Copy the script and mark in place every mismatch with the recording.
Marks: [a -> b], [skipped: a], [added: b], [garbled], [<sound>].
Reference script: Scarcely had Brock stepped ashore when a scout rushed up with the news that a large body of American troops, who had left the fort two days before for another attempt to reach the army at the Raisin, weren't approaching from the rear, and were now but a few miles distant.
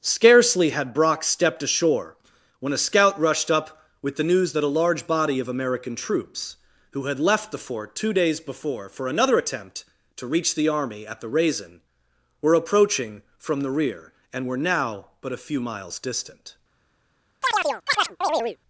Scarcely had Brock stepped ashore when a scout rushed up with the news that a large body of American troops, who had left the fort two days before for another attempt to reach the army at the Raisin, [weren't -> were] approaching from the rear, and were now but a few miles distant. [chirp]